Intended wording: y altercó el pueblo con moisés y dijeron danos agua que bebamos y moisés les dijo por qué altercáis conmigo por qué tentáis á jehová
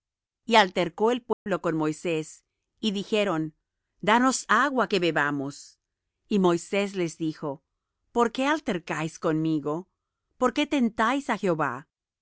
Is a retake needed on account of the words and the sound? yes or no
yes